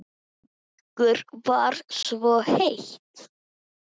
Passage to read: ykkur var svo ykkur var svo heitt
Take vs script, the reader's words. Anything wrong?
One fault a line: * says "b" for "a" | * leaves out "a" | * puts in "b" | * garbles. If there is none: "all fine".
* leaves out "ykkur var svo"